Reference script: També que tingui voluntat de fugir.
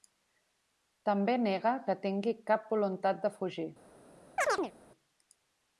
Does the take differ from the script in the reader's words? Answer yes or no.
yes